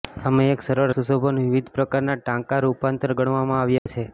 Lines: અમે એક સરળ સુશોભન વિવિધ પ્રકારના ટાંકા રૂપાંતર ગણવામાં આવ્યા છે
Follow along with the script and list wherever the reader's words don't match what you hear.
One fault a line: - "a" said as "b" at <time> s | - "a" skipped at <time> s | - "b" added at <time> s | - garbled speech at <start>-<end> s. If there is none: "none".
none